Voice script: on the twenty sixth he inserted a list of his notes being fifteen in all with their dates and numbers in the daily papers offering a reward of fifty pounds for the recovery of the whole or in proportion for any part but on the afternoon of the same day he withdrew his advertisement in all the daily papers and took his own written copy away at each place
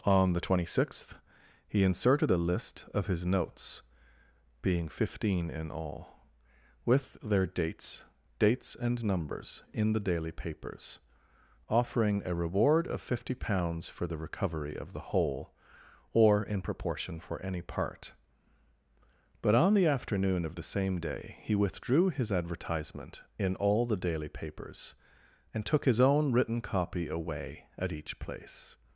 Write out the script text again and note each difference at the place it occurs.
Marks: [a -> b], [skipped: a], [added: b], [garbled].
on the twenty sixth he inserted a list of his notes being fifteen in all with their dates [added: dates] and numbers in the daily papers offering a reward of fifty pounds for the recovery of the whole or in proportion for any part but on the afternoon of the same day he withdrew his advertisement in all the daily papers and took his own written copy away at each place